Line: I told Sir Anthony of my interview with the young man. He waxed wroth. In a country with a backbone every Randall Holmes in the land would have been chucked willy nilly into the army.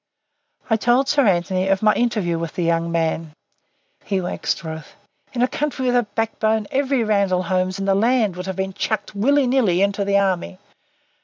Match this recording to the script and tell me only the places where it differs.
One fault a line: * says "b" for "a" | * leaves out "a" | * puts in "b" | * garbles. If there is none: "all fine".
all fine